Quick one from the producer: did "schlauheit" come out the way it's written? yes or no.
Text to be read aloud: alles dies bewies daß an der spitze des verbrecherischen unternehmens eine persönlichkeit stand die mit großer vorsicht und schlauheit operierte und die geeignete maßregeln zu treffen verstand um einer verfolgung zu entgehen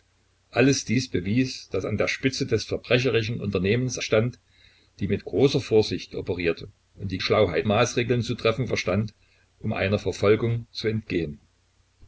no